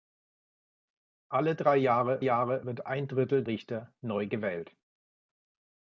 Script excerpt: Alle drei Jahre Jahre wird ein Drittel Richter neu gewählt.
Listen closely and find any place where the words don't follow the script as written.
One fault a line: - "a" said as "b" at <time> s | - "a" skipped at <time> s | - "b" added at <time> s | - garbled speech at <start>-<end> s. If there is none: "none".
none